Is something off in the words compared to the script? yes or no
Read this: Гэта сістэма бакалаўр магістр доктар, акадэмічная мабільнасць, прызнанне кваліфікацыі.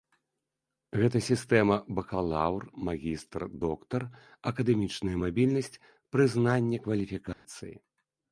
no